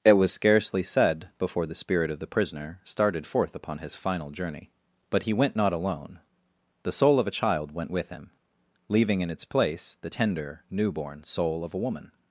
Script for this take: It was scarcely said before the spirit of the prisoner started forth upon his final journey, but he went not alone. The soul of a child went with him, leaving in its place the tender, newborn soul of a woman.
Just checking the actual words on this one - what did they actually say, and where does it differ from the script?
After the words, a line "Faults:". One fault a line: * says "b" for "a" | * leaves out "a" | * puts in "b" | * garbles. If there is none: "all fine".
It was scarcely said before the spirit of the prisoner started forth upon his final journey, but he went not alone. The soul of a child went with him, leaving in its place the tender, newborn soul of a woman.
Faults:
all fine